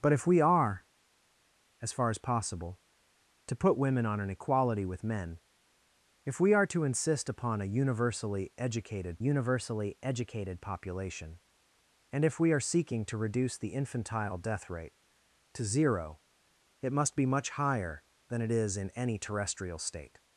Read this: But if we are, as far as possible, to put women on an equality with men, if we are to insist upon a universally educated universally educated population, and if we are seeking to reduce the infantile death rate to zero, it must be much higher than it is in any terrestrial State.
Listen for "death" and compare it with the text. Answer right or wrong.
right